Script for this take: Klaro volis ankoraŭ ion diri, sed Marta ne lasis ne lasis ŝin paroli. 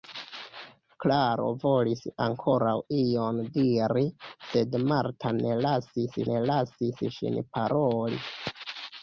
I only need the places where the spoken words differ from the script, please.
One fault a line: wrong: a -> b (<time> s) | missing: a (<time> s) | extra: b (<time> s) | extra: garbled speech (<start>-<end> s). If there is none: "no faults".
no faults